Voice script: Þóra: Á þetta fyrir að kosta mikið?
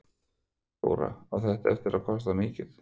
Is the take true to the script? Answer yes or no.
no